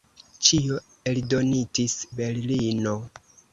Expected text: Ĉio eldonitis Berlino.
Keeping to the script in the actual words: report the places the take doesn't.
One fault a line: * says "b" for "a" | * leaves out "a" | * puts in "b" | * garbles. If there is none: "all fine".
all fine